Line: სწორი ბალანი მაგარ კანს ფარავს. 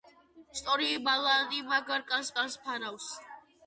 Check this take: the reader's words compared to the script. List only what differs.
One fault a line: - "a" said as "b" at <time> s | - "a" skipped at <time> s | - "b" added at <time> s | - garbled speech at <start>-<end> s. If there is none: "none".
- "კანს" added at 2.4 s